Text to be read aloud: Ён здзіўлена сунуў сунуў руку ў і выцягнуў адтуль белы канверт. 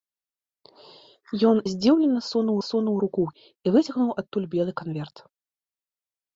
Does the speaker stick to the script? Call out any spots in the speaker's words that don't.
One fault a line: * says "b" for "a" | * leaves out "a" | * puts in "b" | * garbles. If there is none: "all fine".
all fine